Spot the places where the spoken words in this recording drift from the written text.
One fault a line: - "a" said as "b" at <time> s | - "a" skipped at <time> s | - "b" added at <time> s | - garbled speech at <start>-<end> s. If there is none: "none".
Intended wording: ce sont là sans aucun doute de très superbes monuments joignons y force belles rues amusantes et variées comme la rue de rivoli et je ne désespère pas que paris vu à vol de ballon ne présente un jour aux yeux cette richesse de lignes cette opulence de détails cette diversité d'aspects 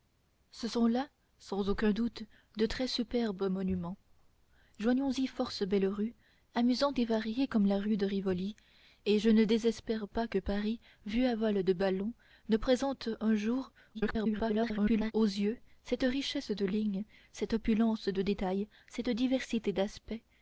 - garbled speech at 13.9-15.1 s